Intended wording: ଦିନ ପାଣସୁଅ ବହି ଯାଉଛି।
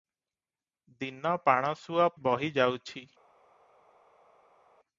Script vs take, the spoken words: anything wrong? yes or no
no